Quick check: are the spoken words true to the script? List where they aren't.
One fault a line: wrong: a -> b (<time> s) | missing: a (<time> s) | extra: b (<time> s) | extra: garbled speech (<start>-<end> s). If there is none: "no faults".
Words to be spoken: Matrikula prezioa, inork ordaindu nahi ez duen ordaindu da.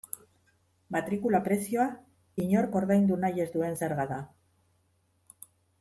wrong: ordaindu -> zerga (3.8 s)